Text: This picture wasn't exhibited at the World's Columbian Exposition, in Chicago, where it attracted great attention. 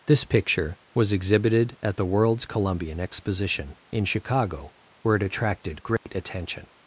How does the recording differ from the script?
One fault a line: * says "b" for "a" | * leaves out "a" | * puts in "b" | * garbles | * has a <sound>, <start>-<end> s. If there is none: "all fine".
* says "was" for "wasn't"
* has a dropout, 6.0-6.1 s